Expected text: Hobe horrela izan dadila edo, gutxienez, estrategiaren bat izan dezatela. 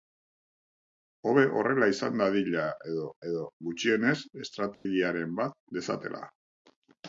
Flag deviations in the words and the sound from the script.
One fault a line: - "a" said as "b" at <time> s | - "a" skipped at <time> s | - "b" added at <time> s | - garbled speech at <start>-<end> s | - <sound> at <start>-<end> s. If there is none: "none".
- "edo" added at 3.3 s
- dropout at 4.7-4.9 s
- "izan" skipped at 5.6 s